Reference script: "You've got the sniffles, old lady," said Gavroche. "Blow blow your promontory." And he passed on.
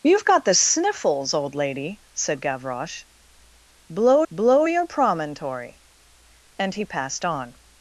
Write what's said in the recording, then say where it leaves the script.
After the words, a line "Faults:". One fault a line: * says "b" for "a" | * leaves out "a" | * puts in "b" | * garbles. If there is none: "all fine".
"You've got the sniffles, old lady," said Gavroche. "Blow blow your promontory." And he passed on.
Faults:
all fine